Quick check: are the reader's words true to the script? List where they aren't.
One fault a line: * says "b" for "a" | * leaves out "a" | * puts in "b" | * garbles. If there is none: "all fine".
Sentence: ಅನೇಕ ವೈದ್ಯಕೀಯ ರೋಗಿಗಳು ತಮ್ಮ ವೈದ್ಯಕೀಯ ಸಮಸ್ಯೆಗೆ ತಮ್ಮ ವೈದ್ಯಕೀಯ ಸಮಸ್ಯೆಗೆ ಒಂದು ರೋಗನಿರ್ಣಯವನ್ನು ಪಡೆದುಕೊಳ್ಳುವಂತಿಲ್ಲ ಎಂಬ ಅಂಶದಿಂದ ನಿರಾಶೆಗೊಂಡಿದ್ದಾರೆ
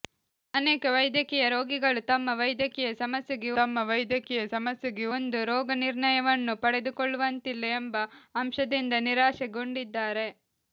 all fine